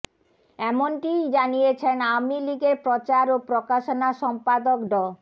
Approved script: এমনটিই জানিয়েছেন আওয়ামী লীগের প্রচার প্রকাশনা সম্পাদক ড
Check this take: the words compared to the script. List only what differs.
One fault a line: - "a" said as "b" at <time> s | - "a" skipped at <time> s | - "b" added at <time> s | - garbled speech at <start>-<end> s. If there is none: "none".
- "ও" added at 3.3 s